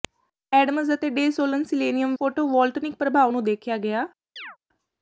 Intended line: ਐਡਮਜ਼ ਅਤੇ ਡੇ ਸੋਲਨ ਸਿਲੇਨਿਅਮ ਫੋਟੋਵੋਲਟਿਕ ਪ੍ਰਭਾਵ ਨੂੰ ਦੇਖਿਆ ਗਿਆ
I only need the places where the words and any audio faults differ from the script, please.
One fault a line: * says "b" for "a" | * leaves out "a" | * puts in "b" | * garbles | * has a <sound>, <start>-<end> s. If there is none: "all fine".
* has a chirp, 4.4-4.6 s